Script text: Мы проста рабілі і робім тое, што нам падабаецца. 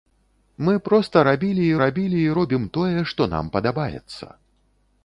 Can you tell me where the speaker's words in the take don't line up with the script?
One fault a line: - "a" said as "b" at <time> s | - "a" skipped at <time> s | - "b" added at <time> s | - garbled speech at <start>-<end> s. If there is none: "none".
- "рабілі і" added at 1.8 s